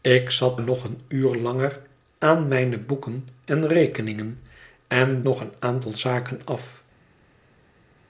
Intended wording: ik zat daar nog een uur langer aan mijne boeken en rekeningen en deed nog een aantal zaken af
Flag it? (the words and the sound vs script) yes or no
yes